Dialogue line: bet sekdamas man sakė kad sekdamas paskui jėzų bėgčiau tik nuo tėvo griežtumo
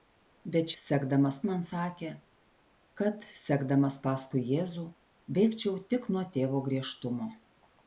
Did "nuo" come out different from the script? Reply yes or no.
no